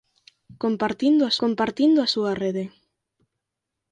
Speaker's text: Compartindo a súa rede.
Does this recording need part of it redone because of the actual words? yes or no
yes